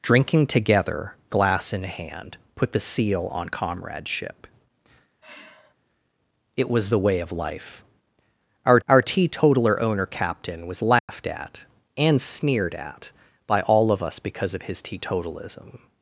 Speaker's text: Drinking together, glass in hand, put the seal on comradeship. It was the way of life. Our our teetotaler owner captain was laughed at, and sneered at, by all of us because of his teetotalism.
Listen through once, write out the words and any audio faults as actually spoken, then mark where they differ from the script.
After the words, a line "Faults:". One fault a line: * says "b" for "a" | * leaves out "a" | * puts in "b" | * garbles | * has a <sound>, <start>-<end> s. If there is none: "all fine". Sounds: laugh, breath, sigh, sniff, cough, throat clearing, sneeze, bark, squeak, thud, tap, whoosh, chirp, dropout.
Drinking together, glass in hand, put the seal on comradeship. It was the way of life. Our our teetotaler owner captain was laughed at, and sneered at, by all of us because of his teetotalism.
Faults:
* has a sigh, 5.2-5.7 s
* has a dropout, 11.0-11.1 s